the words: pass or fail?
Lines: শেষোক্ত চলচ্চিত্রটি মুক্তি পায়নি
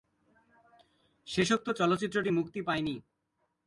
pass